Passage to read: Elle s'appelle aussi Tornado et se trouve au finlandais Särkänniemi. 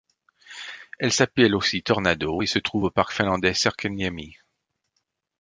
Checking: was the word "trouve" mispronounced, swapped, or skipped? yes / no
no